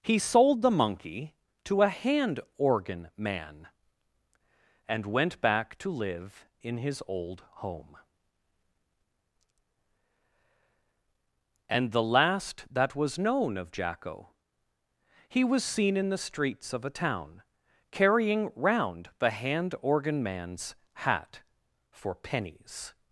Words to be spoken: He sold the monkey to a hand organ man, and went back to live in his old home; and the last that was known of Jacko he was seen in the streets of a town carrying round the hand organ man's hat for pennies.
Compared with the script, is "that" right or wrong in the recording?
right